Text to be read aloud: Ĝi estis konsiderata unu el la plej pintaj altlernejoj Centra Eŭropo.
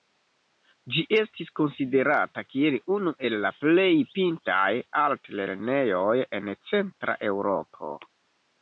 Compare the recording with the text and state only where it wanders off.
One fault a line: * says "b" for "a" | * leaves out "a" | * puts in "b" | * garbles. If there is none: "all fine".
* puts in "kiel"
* puts in "en"